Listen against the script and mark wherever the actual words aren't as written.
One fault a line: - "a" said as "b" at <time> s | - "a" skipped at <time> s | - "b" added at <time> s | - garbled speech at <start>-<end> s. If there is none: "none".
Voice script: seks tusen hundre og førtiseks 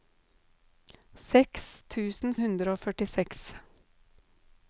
none